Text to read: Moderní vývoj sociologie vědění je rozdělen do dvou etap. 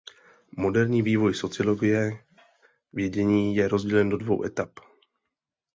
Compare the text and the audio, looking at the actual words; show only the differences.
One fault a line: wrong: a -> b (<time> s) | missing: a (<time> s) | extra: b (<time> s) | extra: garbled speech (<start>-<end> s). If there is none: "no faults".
no faults